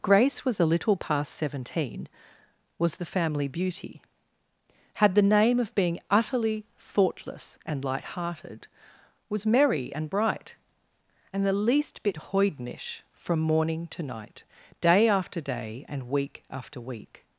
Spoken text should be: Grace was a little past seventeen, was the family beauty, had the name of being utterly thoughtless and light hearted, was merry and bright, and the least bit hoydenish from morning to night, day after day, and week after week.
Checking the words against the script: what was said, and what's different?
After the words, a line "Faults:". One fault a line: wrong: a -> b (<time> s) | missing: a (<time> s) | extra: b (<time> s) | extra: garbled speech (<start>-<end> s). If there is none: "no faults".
Grace was a little past seventeen, was the family beauty, had the name of being utterly thoughtless and light hearted, was merry and bright, and the least bit hoydenish from morning to night, day after day, and week after week.
Faults:
no faults